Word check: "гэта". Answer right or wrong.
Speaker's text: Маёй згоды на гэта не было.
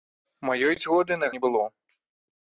wrong